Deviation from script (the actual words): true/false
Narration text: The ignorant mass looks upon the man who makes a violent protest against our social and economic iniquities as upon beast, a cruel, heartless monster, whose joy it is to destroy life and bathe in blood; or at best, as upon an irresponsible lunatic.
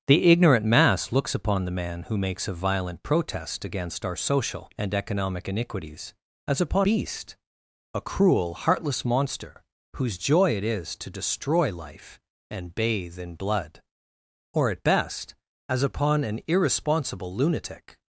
false